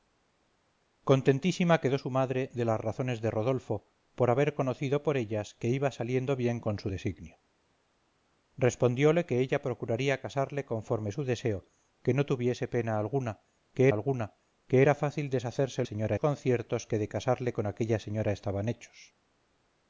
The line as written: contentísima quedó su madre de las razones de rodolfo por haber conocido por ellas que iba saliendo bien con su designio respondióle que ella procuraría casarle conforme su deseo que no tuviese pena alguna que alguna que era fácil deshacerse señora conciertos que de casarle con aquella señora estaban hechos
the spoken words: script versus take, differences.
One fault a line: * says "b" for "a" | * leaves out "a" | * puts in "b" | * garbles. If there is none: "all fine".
all fine